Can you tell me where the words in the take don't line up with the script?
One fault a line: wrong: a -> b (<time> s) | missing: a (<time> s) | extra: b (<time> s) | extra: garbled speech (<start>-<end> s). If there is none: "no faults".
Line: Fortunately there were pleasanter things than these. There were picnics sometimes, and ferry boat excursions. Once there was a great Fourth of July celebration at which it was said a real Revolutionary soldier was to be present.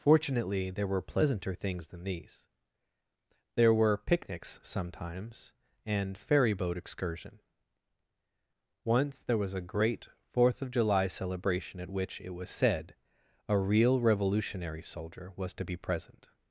wrong: excursions -> excursion (6.8 s)